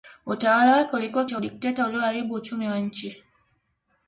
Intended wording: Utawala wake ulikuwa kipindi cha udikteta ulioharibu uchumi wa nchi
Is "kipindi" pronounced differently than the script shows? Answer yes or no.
yes